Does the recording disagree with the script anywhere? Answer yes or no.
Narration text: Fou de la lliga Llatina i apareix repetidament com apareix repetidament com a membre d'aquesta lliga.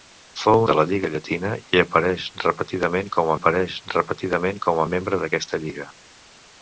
no